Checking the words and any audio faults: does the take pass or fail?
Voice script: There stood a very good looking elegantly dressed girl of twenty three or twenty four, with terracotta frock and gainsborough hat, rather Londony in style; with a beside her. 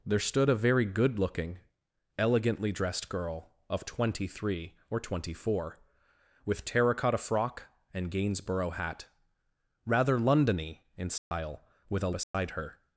fail